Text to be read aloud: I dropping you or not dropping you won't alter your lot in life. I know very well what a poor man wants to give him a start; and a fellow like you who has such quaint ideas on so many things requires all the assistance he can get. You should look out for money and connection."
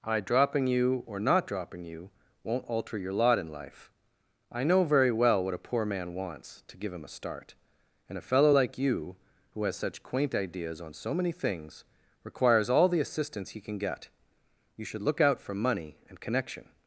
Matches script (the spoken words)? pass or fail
pass